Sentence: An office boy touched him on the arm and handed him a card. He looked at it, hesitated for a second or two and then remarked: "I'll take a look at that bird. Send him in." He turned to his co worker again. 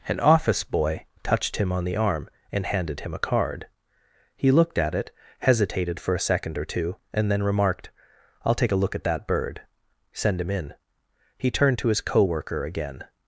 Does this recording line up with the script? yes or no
yes